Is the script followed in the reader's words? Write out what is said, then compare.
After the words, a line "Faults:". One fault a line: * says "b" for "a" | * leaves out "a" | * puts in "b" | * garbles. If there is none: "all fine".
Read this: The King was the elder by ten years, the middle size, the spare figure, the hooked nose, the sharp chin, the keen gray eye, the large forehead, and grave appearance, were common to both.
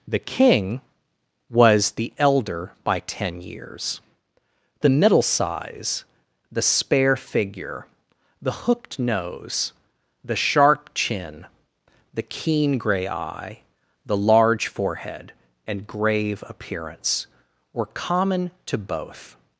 The King was the elder by ten years, the middle size, the spare figure, the hooked nose, the sharp chin, the keen gray eye, the large forehead, and grave appearance, were common to both.
Faults:
all fine